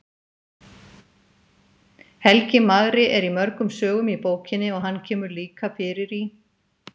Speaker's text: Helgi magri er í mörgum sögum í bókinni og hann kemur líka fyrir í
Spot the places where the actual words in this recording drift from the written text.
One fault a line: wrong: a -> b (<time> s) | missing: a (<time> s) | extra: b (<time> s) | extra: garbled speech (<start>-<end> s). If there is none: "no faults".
no faults